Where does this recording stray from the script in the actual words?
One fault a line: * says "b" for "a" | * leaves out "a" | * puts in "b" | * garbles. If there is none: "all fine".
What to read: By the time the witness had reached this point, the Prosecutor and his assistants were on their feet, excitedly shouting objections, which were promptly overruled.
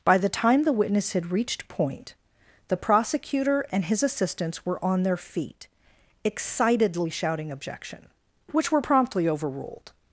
* leaves out "this"
* says "objection" for "objections"